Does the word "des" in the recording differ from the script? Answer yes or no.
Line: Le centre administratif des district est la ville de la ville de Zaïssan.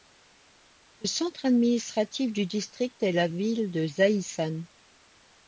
yes